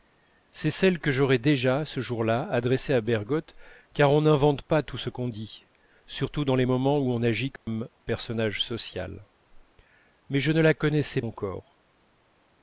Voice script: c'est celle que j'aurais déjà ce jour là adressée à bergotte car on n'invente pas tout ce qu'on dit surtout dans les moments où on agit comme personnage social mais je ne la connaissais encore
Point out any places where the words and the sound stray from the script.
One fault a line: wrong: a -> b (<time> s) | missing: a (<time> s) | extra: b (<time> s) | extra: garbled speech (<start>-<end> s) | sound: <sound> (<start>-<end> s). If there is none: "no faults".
sound: dropout (7.6-7.7 s)